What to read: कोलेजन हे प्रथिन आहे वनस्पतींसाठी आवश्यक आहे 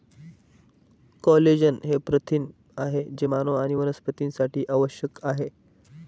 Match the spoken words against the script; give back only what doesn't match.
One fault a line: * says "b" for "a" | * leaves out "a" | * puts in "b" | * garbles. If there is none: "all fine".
* puts in "जे मानव आणि"